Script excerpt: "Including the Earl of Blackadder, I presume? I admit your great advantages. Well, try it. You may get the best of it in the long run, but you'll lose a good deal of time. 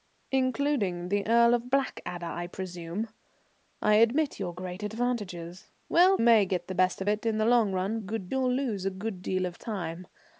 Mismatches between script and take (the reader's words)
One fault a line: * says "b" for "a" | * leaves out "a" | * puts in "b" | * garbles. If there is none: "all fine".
* leaves out "try it You"
* says "good" for "but"